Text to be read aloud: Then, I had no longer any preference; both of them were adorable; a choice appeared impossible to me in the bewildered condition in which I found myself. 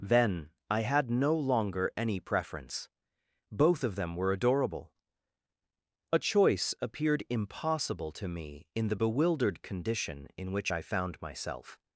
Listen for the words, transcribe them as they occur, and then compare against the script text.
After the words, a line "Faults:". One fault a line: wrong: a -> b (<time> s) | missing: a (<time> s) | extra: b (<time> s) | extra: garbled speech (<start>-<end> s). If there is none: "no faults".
Then, I had no longer any preference; both of them were adorable; a choice appeared impossible to me in the bewildered condition in which I found myself.
Faults:
no faults